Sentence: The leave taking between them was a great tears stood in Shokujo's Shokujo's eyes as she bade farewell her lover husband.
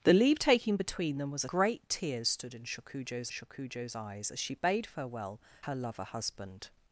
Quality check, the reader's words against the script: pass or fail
pass